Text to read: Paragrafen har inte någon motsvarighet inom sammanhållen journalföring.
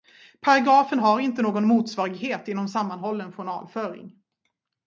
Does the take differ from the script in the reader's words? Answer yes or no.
no